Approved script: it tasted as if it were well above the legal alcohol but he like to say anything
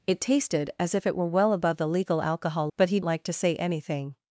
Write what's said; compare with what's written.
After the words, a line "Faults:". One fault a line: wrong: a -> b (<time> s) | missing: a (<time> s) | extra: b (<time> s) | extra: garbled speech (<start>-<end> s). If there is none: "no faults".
it tasted as if it were well above the legal alcohol but he like to say anything
Faults:
no faults